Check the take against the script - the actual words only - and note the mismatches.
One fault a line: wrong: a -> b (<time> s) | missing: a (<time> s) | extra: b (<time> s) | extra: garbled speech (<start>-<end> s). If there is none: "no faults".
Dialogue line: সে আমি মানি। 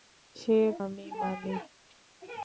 no faults